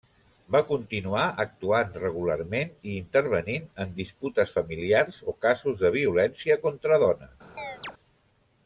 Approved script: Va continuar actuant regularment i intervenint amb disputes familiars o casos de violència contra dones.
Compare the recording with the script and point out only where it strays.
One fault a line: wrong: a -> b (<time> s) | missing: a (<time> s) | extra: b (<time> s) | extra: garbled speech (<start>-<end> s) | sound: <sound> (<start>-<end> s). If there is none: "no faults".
wrong: amb -> en (3.9 s)
sound: chirp (7.6-7.9 s)